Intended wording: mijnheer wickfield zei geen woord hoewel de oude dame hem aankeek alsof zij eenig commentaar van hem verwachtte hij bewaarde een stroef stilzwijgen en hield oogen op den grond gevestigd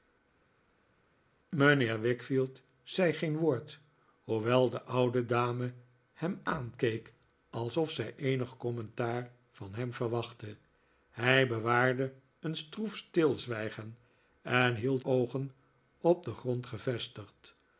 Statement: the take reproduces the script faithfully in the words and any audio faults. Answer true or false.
true